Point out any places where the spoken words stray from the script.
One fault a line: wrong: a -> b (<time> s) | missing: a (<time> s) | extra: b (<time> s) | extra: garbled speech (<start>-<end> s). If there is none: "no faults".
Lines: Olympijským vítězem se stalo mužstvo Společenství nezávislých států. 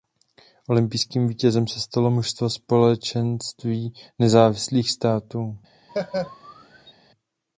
no faults